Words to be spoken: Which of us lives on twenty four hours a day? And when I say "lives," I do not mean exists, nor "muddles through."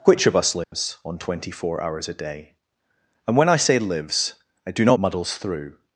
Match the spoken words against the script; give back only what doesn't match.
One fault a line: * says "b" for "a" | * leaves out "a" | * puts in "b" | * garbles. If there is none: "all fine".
* leaves out "mean exists nor"